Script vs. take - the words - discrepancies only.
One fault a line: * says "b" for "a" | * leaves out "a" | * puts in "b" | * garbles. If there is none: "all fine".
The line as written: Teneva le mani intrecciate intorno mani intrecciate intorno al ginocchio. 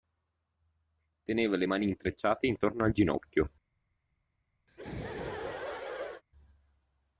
* leaves out "mani intrecciate intorno"